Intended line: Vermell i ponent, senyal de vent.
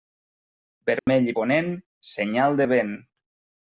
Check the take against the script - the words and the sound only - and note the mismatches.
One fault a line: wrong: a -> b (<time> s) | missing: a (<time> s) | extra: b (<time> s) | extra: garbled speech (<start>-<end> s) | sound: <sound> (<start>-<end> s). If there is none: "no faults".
sound: dropout (1.0-1.1 s)